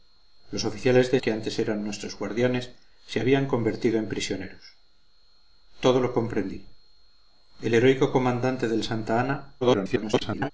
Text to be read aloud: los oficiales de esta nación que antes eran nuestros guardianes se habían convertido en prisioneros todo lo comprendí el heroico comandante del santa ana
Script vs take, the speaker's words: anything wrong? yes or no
yes